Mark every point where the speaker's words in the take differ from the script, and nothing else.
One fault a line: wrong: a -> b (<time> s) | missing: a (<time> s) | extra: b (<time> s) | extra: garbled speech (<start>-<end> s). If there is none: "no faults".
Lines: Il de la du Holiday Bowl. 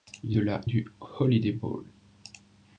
no faults